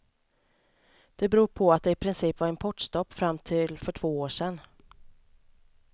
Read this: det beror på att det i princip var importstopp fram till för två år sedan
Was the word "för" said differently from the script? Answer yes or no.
no